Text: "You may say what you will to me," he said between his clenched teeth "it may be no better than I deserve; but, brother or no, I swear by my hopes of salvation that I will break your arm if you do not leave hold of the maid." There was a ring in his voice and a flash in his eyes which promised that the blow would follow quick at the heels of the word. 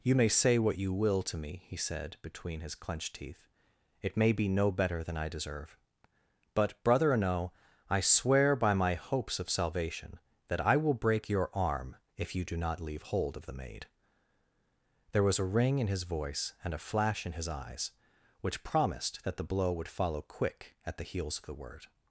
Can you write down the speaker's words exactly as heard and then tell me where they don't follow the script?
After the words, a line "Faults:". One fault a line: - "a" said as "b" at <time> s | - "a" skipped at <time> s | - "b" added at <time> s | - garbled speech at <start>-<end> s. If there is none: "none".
"You may say what you will to me," he said between his clenched teeth "it may be no better than I deserve; but, brother or no, I swear by my hopes of salvation that I will break your arm if you do not leave hold of the maid." There was a ring in his voice and a flash in his eyes which promised that the blow would follow quick at the heels of the word.
Faults:
none